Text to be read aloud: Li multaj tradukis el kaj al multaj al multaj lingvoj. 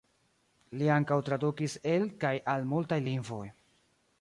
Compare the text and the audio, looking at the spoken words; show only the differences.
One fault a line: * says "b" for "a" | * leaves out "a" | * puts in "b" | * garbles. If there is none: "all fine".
* says "ankaŭ" for "multaj"
* leaves out "al multaj"